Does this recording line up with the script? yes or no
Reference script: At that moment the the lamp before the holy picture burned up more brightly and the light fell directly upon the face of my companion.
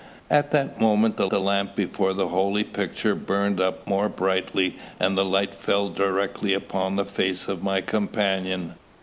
yes